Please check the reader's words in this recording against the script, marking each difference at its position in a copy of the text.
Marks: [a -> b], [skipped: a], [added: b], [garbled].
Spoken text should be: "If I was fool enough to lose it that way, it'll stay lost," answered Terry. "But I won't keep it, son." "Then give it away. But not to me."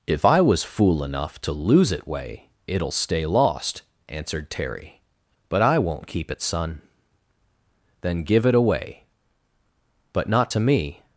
"If I was fool enough to lose it [skipped: that] way, it'll stay lost," answered Terry. "But I won't keep it, son." "Then give it away. But not to me."